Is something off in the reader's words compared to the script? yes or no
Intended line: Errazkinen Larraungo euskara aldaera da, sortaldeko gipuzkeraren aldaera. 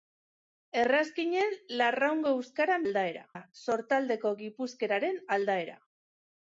no